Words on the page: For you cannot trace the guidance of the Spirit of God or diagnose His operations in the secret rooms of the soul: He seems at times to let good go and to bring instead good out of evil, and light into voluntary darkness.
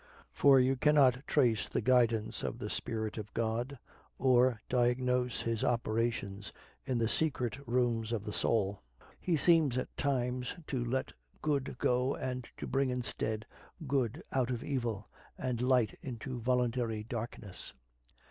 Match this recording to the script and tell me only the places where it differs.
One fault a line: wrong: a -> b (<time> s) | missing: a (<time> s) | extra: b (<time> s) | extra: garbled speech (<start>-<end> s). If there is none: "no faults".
no faults